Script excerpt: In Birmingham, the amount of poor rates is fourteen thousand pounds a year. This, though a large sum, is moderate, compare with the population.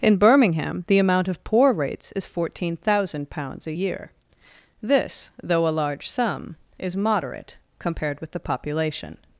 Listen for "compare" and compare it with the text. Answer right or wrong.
wrong